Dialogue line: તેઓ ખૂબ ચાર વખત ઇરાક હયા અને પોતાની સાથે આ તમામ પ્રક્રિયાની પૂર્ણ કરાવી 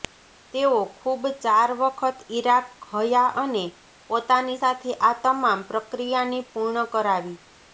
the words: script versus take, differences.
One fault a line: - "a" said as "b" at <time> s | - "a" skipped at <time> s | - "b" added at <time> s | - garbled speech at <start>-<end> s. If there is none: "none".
none